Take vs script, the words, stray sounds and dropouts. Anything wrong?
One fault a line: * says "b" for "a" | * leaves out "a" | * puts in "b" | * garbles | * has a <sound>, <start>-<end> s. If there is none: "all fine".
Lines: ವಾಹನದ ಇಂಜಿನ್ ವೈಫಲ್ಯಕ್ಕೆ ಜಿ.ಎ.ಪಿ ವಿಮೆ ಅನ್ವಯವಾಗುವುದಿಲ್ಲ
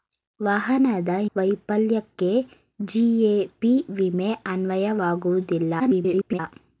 * leaves out "ಇಂಜಿನ್"
* garbles